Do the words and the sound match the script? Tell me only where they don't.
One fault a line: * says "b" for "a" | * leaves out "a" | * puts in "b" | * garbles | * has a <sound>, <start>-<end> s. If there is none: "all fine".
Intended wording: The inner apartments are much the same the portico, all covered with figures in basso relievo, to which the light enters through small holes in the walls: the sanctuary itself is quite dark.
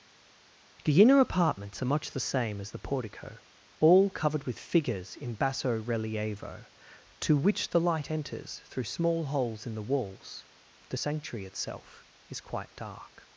* puts in "as"